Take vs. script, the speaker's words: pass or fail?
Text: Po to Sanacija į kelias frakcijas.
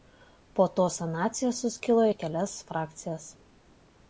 fail